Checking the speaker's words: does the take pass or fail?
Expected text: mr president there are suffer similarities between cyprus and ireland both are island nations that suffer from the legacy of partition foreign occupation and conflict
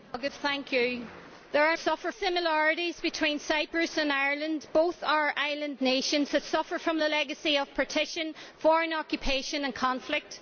pass